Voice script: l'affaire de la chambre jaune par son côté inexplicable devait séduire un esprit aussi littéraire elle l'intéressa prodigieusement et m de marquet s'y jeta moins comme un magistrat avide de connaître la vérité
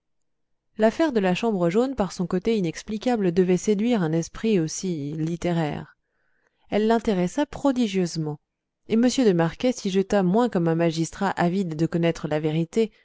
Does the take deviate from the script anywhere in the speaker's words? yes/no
no